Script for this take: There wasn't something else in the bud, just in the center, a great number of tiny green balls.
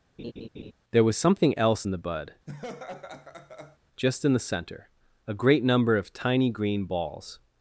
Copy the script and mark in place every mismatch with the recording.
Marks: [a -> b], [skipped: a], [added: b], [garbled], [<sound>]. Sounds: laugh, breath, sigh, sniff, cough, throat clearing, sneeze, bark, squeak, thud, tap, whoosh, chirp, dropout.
[laugh] There [wasn't -> was] something else in the bud, [laugh] just in the center, a great number of tiny green balls.